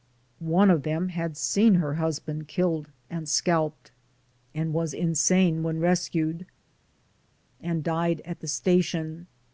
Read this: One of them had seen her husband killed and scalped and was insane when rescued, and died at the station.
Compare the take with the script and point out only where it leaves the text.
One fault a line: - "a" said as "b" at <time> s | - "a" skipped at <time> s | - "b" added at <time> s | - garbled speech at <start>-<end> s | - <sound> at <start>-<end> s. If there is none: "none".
none